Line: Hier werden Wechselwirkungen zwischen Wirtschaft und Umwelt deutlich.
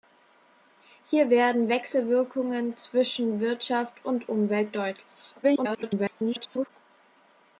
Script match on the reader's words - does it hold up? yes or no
no